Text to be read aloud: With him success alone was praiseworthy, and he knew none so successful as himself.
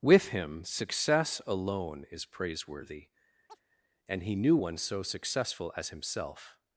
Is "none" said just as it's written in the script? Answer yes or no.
no